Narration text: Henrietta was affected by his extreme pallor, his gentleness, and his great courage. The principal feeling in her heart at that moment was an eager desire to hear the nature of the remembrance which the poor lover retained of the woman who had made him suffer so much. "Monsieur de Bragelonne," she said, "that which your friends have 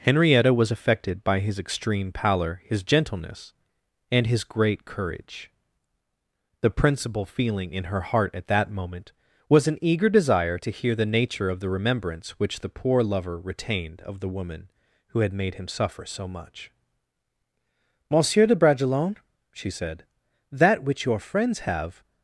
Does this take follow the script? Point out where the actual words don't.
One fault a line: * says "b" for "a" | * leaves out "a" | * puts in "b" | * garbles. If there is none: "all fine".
all fine